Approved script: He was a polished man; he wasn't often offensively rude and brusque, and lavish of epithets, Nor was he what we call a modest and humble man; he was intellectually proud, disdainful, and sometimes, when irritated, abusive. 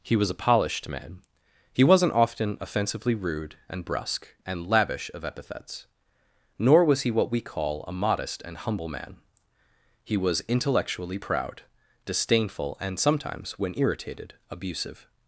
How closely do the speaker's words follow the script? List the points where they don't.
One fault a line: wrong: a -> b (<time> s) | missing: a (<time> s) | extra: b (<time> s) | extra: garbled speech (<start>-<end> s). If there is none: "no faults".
no faults